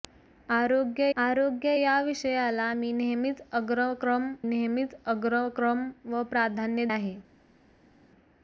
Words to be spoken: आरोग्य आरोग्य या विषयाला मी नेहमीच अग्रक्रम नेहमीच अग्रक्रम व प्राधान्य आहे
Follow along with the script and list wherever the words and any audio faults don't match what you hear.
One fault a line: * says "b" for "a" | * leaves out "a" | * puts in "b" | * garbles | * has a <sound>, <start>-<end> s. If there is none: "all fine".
all fine